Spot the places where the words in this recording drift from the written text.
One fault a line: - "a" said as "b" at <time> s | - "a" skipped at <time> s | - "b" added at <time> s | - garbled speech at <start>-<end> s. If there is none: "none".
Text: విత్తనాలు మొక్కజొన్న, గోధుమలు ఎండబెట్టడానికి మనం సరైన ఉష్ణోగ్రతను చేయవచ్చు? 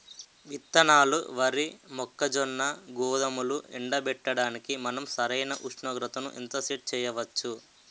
- "వరి" added at 1.3 s
- "ఎంత సెట్" added at 6.4 s